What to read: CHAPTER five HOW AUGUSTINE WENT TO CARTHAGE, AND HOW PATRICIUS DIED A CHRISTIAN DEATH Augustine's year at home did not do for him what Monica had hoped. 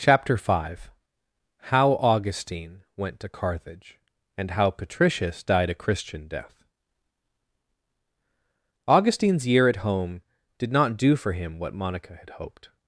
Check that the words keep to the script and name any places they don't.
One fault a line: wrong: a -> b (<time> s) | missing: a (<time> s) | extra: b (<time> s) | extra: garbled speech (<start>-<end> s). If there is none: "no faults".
no faults